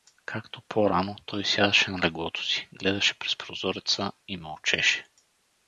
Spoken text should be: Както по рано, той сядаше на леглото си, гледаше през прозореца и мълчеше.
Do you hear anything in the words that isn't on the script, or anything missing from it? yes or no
no